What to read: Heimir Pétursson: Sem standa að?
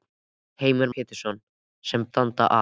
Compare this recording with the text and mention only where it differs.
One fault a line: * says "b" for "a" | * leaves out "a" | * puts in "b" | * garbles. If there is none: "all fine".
all fine